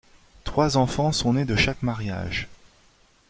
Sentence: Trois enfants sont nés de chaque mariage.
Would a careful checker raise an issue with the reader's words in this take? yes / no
no